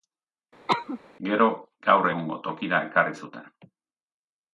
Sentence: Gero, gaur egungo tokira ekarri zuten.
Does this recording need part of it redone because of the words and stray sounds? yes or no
yes